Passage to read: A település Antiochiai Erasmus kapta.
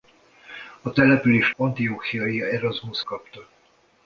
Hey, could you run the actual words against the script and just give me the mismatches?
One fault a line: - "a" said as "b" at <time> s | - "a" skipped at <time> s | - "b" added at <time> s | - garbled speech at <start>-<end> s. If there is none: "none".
none